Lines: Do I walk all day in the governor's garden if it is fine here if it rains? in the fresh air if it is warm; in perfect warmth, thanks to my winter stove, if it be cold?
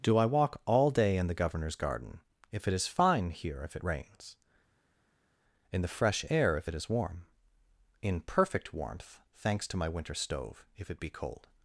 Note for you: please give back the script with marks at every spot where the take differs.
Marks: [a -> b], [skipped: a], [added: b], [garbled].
Do I walk all day in the governor's garden if it is fine here if it rains? in the fresh air if it is warm; in perfect warmth, thanks to my winter stove, if it be cold?